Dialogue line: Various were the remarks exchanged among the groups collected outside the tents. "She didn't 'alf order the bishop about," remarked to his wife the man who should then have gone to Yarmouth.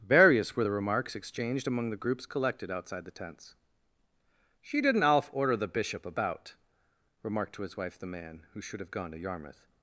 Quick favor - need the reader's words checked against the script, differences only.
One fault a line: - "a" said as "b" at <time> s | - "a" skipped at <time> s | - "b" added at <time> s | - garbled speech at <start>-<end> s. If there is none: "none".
- "then" skipped at 8.8 s